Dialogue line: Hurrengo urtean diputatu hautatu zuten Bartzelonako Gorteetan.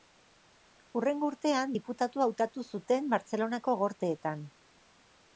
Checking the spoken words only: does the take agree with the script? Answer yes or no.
yes